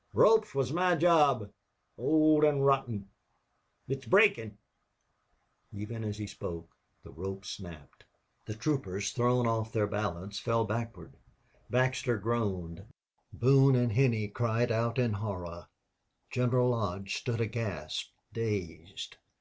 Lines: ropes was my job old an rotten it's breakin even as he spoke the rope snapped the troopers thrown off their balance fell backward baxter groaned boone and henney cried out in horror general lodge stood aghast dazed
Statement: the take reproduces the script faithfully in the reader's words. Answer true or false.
true